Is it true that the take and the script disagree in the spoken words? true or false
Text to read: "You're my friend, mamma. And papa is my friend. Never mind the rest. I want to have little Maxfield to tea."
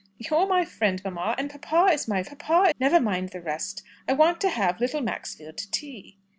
true